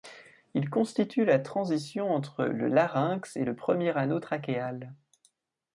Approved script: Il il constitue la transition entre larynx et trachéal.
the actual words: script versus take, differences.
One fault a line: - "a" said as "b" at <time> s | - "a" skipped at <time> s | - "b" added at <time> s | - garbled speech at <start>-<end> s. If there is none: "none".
- "il" skipped at 0.7 s
- "le" added at 2.5 s
- "le premier anneau" added at 3.4 s